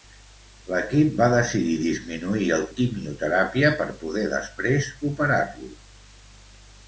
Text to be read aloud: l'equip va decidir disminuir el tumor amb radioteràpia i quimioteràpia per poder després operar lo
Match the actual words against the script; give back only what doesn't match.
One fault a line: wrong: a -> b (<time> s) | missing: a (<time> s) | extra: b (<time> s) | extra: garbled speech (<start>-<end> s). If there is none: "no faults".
missing: tumor amb radioteràpia (2.6 s)